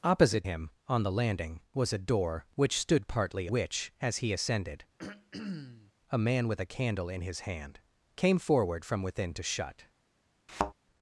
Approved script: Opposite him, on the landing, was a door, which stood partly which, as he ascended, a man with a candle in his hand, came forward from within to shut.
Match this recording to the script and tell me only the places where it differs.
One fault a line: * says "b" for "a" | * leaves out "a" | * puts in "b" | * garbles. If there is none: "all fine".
all fine